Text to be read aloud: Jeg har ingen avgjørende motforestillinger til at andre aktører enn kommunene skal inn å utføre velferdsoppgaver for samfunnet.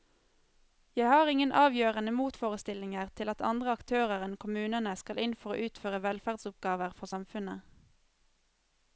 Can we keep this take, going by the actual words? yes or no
no